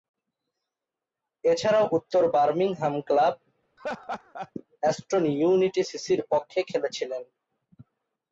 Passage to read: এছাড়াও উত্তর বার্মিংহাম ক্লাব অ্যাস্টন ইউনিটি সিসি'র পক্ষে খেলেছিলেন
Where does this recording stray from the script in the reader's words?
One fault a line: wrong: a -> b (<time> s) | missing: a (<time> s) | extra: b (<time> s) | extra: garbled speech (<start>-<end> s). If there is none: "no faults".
no faults